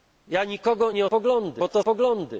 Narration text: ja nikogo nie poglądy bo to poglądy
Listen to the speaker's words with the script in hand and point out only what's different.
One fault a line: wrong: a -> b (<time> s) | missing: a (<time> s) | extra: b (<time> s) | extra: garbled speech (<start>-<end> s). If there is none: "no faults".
no faults